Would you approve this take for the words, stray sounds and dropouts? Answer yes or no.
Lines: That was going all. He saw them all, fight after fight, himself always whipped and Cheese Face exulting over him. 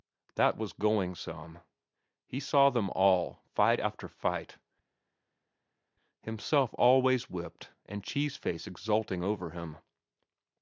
no